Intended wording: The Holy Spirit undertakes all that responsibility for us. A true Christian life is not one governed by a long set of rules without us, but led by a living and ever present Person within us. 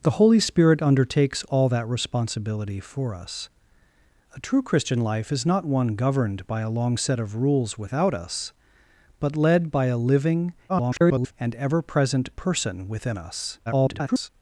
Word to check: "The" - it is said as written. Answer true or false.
true